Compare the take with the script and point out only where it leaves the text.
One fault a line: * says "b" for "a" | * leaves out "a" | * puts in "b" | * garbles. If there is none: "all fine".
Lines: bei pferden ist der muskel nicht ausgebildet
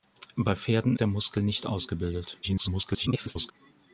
* leaves out "ist"
* garbles